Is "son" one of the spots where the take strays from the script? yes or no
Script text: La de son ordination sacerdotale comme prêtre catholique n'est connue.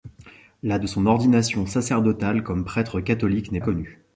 no